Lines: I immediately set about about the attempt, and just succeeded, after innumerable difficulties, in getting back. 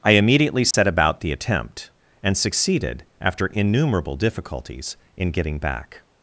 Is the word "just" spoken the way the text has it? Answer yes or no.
no